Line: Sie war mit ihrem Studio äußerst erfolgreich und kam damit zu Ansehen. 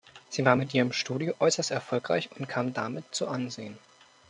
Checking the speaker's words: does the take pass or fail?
pass